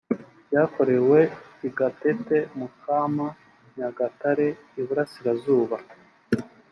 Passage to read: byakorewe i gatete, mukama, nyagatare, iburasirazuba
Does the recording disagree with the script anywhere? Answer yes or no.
no